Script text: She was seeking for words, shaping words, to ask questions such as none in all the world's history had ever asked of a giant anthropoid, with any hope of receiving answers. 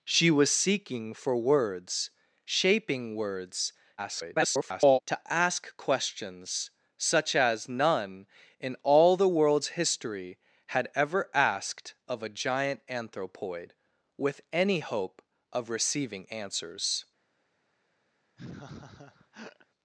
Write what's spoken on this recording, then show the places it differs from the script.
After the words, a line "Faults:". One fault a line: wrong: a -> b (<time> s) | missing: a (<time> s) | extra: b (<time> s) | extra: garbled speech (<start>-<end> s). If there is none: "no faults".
She was seeking for words, shaping words, [garbled] to ask questions such as none in all the world's history had ever asked of a giant anthropoid, with any hope of receiving answers.
Faults:
extra: garbled speech (4.0-5.0 s)